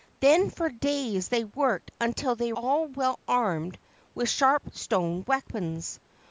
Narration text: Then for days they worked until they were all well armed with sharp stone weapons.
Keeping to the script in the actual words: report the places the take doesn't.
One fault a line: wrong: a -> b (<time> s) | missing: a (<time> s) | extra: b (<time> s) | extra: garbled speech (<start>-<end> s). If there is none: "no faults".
missing: were (2.5 s)